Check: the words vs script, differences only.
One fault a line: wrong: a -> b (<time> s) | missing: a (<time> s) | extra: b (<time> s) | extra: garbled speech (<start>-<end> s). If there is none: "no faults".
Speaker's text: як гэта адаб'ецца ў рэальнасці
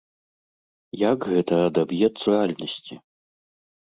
missing: ў (2.2 s)